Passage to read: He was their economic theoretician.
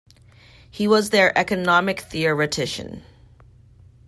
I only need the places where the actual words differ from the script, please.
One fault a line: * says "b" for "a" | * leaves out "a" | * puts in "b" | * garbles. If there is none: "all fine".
all fine